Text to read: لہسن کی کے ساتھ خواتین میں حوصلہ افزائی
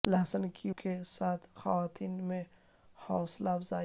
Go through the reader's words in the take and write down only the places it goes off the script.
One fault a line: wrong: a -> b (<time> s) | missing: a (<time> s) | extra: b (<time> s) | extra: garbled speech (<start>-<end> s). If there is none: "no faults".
no faults